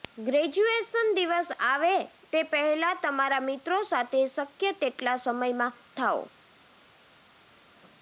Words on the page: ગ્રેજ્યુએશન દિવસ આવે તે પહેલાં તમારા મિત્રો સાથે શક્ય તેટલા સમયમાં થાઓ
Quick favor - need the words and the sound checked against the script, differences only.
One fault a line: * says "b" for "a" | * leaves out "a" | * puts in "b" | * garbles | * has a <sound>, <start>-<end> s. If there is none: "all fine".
all fine